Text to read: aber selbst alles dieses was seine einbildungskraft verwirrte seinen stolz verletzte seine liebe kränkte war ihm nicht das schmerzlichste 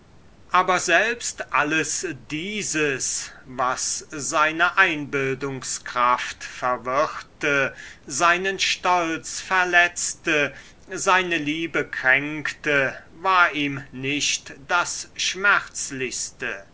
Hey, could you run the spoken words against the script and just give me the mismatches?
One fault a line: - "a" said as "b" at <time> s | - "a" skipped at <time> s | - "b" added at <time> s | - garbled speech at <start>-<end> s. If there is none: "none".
none